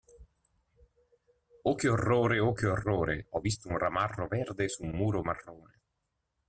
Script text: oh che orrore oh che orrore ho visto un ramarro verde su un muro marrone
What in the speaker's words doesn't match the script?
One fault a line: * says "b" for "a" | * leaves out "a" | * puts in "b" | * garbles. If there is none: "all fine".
all fine